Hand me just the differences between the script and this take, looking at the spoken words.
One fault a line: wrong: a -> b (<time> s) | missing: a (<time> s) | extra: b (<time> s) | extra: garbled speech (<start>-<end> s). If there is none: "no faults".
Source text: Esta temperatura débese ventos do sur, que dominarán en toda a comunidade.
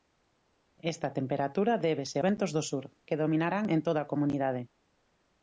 no faults